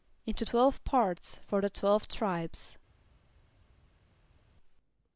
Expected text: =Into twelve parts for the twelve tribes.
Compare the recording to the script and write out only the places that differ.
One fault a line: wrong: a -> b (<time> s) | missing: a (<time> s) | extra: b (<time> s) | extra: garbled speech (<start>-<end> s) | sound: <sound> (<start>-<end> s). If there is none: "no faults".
no faults